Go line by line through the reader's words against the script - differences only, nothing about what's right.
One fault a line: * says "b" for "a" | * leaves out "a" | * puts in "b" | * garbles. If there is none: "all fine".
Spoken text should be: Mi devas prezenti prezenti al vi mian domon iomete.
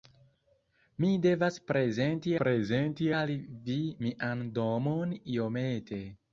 all fine